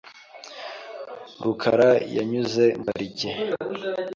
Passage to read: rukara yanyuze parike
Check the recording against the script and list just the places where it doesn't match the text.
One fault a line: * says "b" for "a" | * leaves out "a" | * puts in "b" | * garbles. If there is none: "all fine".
all fine